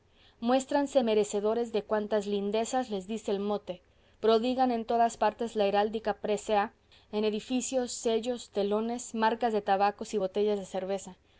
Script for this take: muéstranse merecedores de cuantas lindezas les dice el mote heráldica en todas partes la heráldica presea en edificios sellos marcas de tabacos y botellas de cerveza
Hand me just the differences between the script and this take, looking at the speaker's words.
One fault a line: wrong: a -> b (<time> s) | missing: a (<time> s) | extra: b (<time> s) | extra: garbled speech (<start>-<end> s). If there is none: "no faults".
wrong: heráldica -> prodigan (4.2 s)
extra: telones (8.5 s)